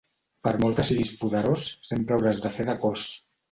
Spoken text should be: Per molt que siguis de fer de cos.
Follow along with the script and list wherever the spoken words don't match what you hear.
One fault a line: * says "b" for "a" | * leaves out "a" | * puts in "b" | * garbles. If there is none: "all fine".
* puts in "poderós sempre hauràs"